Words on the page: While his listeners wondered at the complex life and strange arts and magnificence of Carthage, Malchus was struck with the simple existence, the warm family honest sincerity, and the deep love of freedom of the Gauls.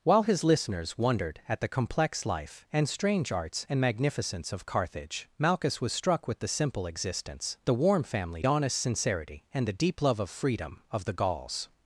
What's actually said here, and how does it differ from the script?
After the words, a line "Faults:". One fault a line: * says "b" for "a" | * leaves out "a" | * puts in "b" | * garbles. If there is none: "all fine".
While his listeners wondered at the complex life and strange arts and magnificence of Carthage, Malchus was struck with the simple existence, the warm family honest sincerity, and the deep love of freedom of the Gauls.
Faults:
all fine